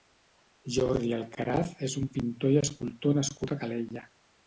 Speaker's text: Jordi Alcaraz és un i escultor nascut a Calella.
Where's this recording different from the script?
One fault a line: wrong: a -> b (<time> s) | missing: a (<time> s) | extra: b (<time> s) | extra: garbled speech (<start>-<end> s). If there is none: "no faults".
extra: pintor (2.1 s)